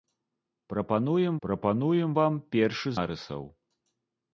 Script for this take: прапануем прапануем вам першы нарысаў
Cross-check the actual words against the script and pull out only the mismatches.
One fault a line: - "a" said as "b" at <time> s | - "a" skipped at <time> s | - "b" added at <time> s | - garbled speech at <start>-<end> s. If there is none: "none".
none